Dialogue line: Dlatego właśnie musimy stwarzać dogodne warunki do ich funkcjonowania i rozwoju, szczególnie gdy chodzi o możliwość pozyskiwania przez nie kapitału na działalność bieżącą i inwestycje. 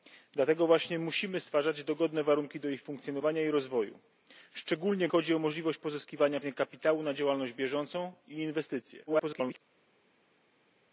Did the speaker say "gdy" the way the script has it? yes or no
no